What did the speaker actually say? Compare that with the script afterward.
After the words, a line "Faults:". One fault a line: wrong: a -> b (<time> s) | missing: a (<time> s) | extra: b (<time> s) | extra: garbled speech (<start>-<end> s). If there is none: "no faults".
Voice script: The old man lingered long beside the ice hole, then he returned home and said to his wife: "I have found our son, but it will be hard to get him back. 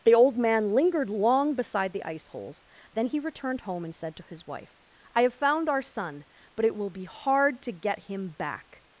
The old man lingered long beside the ice holes, then he returned home and said to his wife: "I have found our son, but it will be hard to get him back.
Faults:
wrong: hole -> holes (2.3 s)